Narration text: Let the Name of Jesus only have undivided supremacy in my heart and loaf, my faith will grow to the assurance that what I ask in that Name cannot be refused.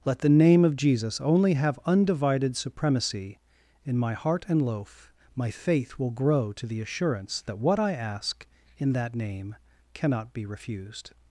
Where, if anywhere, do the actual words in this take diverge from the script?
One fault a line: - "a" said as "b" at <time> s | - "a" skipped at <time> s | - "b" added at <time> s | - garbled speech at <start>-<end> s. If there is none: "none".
none